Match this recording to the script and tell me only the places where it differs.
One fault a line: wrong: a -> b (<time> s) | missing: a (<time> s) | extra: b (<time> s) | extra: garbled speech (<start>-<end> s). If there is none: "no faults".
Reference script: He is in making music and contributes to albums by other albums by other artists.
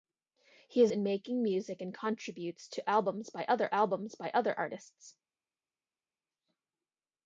no faults